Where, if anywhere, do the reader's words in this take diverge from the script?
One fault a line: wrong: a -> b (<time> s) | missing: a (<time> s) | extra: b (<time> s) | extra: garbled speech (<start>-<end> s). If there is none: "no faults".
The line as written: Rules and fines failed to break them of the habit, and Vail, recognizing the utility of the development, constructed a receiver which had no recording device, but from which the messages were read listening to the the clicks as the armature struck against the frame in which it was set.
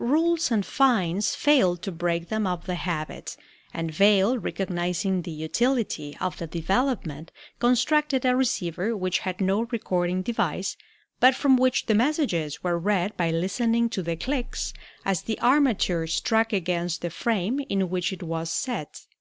extra: by (13.2 s)
missing: the (14.2 s)